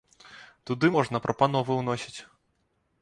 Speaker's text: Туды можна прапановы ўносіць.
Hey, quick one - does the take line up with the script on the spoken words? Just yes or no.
yes